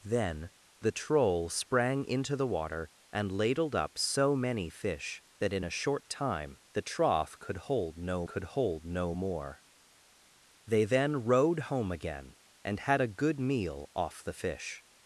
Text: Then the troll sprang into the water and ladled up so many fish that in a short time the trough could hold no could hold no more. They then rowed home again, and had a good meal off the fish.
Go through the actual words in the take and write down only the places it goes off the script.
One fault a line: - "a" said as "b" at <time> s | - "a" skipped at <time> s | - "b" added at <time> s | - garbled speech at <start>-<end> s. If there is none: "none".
none